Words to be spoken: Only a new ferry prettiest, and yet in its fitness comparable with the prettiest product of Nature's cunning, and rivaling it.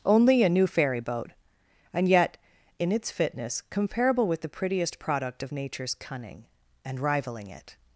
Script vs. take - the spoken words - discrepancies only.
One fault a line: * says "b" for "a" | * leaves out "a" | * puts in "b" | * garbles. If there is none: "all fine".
* says "boat" for "prettiest"